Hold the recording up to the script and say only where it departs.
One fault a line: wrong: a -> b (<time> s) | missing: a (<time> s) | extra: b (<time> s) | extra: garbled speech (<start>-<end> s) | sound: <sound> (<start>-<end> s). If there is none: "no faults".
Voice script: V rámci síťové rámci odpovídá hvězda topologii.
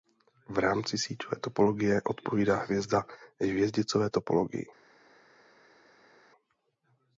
wrong: rámci -> topologie (1.4 s)
extra: hvězdicové (3.4 s)